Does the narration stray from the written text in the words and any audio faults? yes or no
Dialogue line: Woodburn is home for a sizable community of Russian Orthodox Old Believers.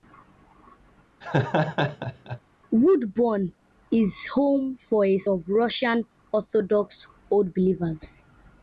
yes